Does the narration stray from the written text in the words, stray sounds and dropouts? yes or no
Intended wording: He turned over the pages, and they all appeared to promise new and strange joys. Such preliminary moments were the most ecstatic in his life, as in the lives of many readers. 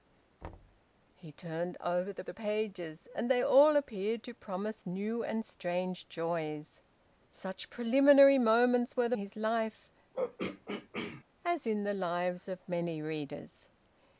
yes